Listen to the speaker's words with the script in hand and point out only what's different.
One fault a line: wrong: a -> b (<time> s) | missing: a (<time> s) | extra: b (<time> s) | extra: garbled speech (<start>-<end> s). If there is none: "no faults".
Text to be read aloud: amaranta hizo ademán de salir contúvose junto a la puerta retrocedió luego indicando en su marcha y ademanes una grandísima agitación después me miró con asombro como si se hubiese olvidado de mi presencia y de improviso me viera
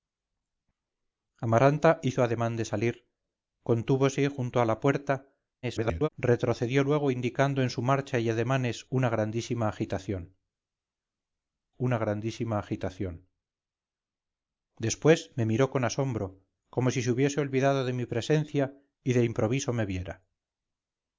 extra: garbled speech (5.6-6.1 s)
extra: una grandísima agitación (11.8 s)